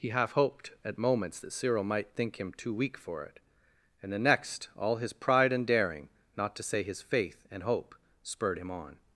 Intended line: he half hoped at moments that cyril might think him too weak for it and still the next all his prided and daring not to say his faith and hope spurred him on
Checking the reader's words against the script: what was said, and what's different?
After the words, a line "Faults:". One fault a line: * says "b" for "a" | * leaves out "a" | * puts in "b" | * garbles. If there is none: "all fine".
he half hoped at moments that cyril might think him too weak for it and the next all his pride and daring not to say his faith and hope spurred him on
Faults:
* leaves out "still"
* says "pride" for "prided"